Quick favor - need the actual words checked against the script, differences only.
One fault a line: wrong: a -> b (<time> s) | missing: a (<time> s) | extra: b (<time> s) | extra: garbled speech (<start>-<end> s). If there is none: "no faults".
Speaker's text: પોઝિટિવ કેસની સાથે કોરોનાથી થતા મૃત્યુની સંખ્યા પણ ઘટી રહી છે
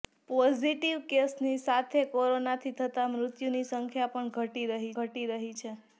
extra: ઘટી રહી (5.0 s)